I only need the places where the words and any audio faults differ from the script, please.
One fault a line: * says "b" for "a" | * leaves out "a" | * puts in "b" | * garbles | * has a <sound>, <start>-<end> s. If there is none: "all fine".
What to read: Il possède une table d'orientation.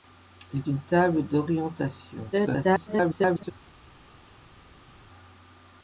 * leaves out "possède"
* garbles